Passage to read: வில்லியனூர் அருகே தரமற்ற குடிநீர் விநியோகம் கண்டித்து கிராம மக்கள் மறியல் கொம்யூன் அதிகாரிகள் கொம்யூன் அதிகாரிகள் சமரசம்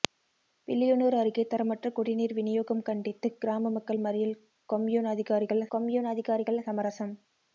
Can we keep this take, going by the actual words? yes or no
yes